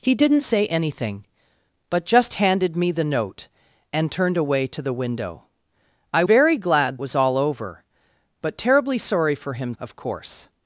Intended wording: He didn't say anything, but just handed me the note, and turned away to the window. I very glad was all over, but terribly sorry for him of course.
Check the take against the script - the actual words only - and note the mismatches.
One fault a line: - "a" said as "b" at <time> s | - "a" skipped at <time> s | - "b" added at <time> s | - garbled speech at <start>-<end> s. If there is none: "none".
none